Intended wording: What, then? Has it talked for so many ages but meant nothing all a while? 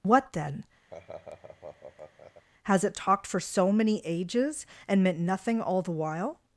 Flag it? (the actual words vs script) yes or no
yes